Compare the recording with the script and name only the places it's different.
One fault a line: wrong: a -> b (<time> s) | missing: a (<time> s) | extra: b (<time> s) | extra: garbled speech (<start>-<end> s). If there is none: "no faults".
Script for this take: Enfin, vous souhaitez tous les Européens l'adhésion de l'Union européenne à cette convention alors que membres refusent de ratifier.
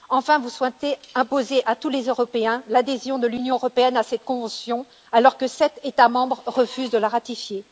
extra: imposer à (1.1 s)
extra: sept États (5.5 s)
extra: la (7.0 s)